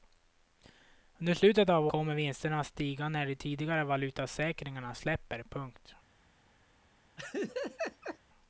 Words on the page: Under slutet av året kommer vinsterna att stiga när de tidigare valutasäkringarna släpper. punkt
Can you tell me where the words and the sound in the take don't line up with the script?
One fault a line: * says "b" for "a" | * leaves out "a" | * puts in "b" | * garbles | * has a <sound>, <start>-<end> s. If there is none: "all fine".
* leaves out "året"
* has a laugh, 7.2-8.2 s